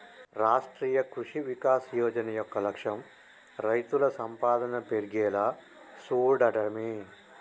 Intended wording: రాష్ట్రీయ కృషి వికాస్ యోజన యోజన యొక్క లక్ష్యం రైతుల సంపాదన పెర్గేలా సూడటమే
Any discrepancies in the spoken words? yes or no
yes